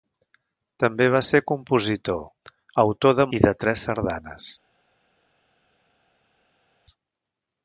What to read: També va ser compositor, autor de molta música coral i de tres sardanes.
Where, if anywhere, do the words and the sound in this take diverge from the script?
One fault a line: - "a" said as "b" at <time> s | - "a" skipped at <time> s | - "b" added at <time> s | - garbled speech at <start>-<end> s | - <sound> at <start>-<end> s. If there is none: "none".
- "molta música coral" skipped at 3.3 s